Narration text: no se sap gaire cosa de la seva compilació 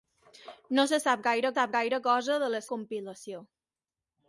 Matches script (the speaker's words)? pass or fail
fail